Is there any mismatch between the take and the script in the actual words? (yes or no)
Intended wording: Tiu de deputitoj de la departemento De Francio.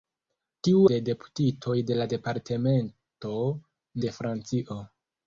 no